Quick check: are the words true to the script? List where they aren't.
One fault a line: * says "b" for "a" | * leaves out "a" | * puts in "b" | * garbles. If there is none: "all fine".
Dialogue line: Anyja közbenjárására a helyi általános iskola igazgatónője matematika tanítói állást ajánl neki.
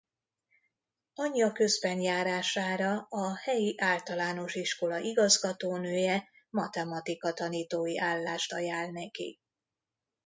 all fine